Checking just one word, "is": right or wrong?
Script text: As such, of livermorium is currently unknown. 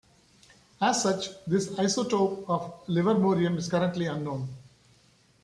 right